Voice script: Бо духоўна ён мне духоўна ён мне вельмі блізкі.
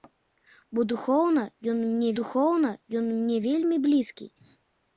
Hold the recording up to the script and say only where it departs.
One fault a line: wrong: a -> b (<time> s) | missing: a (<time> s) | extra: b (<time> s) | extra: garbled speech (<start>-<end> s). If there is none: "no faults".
no faults